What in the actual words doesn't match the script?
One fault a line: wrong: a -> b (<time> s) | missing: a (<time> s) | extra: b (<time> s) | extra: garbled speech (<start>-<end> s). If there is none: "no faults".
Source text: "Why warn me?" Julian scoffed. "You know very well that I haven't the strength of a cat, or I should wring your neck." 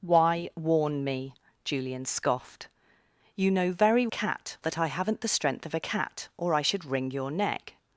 wrong: well -> cat (4.1 s)